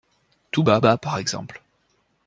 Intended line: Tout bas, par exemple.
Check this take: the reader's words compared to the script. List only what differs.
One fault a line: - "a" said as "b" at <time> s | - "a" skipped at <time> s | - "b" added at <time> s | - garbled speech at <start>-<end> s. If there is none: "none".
- "bas" added at 0.8 s